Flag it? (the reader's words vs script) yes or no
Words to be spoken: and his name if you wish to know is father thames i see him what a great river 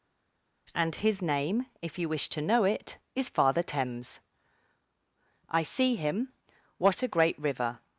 yes